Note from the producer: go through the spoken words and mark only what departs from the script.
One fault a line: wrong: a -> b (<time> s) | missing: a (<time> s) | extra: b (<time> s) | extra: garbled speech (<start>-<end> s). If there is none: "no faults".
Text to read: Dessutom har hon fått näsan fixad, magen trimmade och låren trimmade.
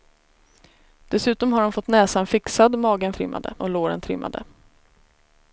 no faults